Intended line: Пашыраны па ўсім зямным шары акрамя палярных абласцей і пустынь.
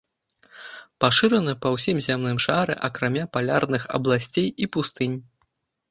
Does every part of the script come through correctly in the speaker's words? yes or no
yes